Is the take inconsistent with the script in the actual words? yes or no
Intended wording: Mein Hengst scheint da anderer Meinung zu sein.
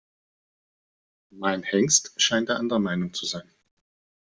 no